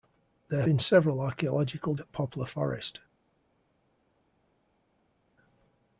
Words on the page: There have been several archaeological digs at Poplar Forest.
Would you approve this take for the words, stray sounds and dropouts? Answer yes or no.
no